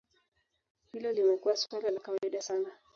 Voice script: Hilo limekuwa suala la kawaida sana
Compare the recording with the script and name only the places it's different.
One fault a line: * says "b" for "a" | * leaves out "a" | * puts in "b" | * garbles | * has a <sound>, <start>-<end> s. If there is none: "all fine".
all fine